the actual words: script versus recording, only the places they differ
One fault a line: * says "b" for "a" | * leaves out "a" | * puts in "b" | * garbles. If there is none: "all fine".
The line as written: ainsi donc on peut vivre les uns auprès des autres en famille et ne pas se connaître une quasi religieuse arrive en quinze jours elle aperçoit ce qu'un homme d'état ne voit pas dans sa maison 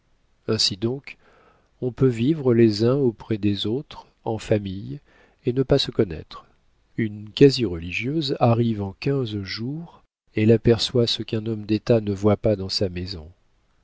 all fine